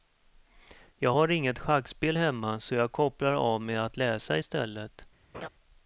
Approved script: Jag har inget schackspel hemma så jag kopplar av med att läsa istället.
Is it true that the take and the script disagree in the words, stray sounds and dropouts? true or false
true